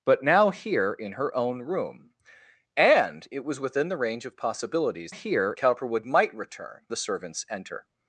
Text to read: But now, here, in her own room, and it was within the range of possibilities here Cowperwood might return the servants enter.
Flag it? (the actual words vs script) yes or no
no